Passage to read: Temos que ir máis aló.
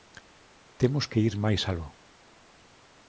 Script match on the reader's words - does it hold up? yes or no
yes